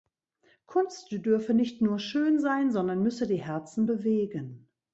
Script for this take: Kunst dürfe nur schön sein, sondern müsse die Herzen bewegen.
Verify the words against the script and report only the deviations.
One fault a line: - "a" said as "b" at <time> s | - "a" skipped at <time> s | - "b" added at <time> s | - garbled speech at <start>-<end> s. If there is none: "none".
- "nicht" added at 1.5 s